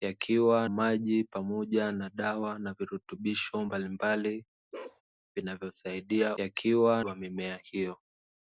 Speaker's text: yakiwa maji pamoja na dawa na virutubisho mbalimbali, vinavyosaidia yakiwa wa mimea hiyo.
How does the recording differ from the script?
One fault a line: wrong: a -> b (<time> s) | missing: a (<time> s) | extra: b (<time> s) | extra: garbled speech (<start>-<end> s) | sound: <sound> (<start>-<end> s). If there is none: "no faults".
sound: bark (4.7-5.0 s)